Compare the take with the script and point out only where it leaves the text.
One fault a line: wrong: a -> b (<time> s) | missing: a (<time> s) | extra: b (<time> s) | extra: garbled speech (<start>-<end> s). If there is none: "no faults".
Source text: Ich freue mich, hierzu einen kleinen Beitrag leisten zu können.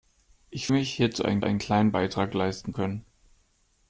missing: freue (0.7 s)
extra: einen (1.4 s)
missing: zu (2.7 s)